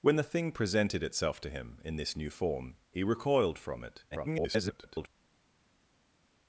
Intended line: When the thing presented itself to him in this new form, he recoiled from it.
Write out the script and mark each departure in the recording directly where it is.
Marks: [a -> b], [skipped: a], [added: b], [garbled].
When the thing presented itself to him in this new form, he recoiled from it. [garbled]